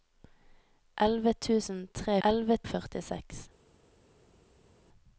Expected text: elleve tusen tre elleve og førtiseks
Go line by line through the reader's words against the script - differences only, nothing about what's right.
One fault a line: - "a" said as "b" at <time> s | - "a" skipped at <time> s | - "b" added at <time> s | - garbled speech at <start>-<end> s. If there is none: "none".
none